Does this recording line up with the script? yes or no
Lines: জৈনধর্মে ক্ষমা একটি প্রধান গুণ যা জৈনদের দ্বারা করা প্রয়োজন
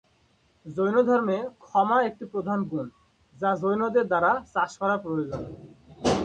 no